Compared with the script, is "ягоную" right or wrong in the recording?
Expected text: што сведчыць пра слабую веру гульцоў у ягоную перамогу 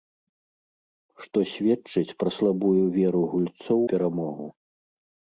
wrong